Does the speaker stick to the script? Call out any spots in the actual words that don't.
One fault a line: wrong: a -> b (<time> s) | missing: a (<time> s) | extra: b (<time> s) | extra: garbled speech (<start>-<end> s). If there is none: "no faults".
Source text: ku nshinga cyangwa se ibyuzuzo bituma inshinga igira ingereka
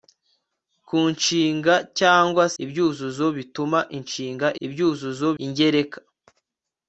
missing: se (2.4 s)
wrong: igira -> ibyuzuzo (4.7 s)